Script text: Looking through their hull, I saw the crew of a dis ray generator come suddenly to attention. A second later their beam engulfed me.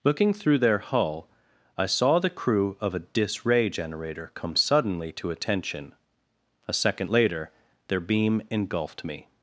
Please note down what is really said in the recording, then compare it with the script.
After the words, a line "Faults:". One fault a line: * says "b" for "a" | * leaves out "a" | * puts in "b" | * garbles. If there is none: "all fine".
Looking through their hull, I saw the crew of a dis ray generator come suddenly to attention. A second later their beam engulfed me.
Faults:
all fine